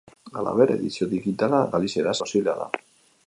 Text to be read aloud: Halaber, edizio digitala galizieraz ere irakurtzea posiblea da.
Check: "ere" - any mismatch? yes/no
yes